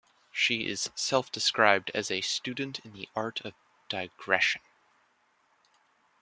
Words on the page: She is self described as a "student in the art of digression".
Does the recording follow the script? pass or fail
pass